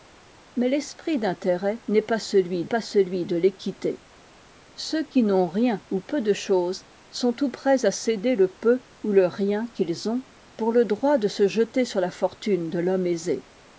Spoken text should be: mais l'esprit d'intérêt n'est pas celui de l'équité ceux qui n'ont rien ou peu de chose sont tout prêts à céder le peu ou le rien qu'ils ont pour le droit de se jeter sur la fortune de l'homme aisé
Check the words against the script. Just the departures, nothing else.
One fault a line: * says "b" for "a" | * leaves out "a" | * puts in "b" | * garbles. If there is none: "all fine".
* puts in "pas celui"